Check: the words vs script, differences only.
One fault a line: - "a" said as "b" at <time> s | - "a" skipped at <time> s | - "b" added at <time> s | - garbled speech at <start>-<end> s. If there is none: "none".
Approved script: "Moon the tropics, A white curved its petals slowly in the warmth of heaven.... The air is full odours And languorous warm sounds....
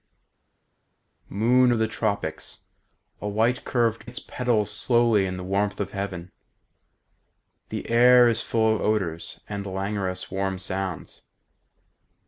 none